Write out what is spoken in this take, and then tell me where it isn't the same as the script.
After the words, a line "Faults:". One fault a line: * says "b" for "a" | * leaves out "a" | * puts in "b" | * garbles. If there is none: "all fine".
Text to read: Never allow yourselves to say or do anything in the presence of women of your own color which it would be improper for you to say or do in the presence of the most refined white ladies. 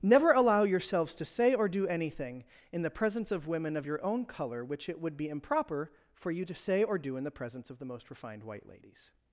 Never allow yourselves to say or do anything in the presence of women of your own color which it would be improper for you to say or do in the presence of the most refined white ladies.
Faults:
all fine